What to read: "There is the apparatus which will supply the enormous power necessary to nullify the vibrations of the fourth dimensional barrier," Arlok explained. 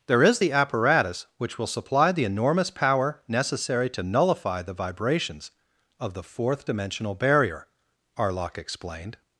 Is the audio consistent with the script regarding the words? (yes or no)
yes